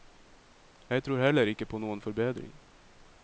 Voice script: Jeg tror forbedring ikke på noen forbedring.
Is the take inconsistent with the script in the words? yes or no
yes